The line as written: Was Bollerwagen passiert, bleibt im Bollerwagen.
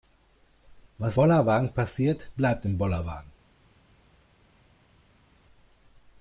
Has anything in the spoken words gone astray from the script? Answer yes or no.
no